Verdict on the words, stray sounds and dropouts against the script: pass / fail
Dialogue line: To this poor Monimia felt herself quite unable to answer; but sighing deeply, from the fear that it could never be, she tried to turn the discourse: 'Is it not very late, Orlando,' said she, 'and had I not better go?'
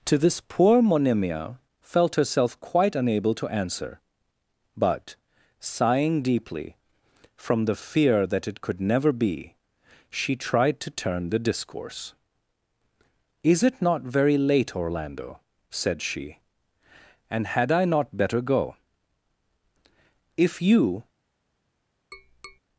fail